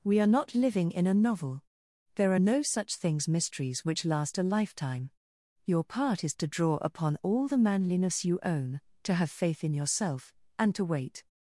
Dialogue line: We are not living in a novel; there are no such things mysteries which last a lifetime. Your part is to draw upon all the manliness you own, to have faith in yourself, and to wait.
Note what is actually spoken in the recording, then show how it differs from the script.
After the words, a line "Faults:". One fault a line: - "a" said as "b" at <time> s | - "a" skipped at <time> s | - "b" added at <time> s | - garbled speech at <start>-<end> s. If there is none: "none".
We are not living in a novel; there are no such things mysteries which last a lifetime. Your part is to draw upon all the manliness you own, to have faith in yourself, and to wait.
Faults:
none